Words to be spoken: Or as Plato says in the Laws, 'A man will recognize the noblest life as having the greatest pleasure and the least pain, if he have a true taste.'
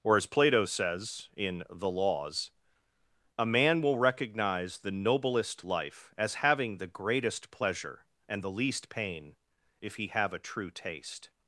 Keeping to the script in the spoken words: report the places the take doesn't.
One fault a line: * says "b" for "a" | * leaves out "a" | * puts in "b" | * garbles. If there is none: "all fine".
all fine